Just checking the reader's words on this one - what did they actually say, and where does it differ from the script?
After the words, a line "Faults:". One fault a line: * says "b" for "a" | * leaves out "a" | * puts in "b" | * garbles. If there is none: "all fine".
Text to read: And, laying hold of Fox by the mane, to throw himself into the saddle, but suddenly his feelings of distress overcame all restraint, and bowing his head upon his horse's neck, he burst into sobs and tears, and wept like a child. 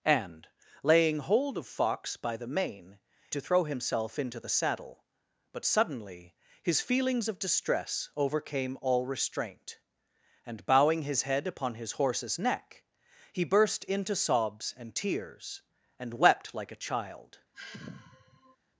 And, laying hold of Fox by the mane, to throw himself into the saddle, but suddenly his feelings of distress overcame all restraint, and bowing his head upon his horse's neck, he burst into sobs and tears, and wept like a child.
Faults:
all fine